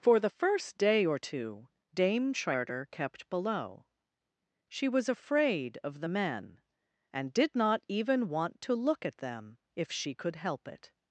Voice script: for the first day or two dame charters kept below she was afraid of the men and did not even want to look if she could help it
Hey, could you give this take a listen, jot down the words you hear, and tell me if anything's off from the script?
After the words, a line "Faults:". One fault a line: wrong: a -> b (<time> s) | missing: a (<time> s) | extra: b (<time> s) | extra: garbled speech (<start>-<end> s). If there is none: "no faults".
for the first day or two dame charter kept below she was afraid of the men and did not even want to look at them if she could help it
Faults:
wrong: charters -> charter (2.3 s)
extra: at them (9.1 s)